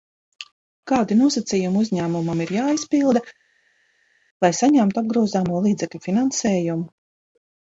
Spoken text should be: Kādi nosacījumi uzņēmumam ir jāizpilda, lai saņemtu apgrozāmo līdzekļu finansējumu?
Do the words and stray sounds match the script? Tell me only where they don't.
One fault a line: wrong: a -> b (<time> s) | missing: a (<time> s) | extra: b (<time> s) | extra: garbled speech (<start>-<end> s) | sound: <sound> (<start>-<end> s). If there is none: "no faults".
no faults